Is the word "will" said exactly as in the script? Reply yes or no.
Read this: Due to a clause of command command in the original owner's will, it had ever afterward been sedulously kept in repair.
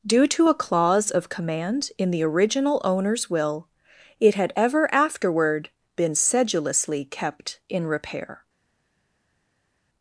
yes